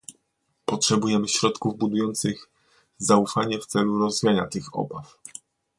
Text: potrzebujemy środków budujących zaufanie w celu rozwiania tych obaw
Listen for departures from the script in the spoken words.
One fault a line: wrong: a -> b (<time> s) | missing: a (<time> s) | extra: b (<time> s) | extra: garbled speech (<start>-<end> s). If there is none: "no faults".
no faults